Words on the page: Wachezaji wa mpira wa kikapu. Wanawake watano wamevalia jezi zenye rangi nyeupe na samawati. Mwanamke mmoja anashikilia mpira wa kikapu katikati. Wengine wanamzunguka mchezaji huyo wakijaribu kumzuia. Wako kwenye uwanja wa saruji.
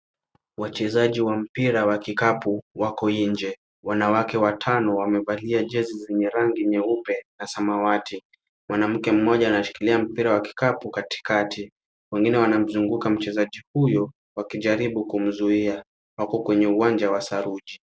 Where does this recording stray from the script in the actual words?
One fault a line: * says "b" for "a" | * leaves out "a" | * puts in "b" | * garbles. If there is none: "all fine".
* puts in "wako nje"